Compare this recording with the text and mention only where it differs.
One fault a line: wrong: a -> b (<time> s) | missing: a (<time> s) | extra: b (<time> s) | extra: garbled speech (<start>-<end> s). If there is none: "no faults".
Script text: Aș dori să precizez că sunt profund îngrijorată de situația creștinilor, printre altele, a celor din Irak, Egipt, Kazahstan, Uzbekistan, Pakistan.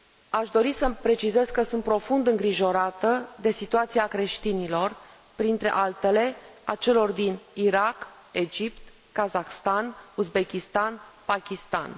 no faults